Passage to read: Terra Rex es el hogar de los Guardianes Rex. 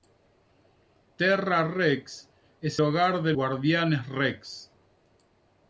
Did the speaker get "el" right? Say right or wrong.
wrong